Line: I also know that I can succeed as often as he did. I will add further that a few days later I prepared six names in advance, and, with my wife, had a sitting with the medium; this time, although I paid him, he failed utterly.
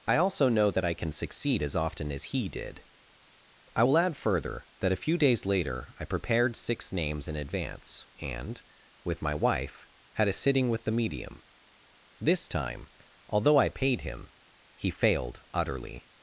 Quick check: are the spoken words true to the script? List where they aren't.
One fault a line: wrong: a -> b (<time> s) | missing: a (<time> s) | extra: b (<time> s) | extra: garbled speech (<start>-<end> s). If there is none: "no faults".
no faults